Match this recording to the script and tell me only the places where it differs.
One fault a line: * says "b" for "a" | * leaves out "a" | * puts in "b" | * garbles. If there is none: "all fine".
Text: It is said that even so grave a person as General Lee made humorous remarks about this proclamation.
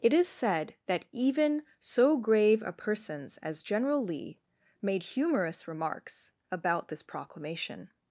* says "persons" for "person"